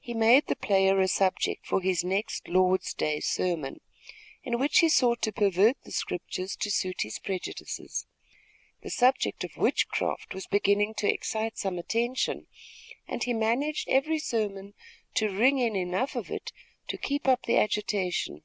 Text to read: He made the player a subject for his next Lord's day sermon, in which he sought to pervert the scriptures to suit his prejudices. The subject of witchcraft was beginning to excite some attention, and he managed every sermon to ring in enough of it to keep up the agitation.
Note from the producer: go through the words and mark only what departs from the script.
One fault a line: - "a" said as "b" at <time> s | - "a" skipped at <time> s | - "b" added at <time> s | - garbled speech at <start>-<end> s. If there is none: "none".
none